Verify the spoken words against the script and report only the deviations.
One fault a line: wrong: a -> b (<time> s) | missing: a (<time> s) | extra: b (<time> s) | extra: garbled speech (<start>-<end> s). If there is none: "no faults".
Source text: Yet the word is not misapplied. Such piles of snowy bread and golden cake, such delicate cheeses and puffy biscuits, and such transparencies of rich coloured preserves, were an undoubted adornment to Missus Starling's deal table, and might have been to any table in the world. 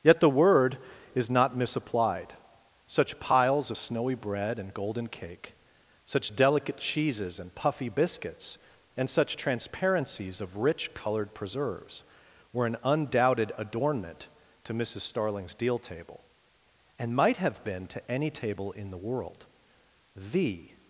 extra: The (20.1 s)